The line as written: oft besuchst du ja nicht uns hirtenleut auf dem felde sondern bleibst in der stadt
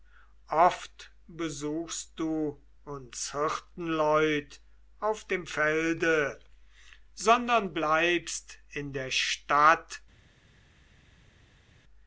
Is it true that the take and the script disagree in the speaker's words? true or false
true